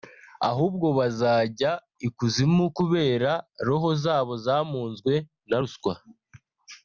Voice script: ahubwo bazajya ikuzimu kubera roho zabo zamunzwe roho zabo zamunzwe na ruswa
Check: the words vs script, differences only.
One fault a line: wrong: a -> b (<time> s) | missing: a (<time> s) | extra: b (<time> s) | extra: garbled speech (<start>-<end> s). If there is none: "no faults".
missing: roho zabo zamunzwe (5.1 s)